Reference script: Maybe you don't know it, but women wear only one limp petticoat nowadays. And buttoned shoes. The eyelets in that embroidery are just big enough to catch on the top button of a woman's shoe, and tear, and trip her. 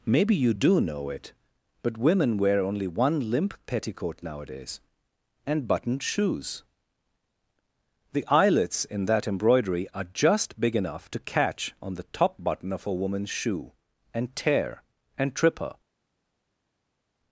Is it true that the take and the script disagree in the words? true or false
true